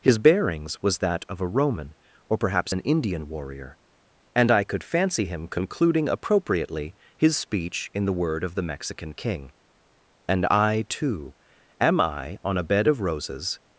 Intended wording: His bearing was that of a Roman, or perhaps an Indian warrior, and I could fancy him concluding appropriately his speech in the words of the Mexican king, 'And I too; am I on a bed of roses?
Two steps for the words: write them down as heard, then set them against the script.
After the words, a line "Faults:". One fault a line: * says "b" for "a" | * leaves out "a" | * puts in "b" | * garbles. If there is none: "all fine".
His bearings was that of a Roman, or perhaps an Indian warrior, and I could fancy him concluding appropriately his speech in the word of the Mexican king, 'And I too; am I on a bed of roses?
Faults:
* says "bearings" for "bearing"
* says "word" for "words"